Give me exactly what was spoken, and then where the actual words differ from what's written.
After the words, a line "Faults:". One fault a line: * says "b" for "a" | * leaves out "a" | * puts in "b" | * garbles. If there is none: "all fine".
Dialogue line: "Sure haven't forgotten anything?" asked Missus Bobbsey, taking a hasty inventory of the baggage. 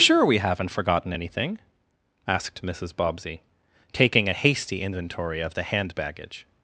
"Sure we haven't forgotten anything?" asked Missus Bobbsey, taking a hasty inventory of the hand baggage.
Faults:
* puts in "we"
* puts in "hand"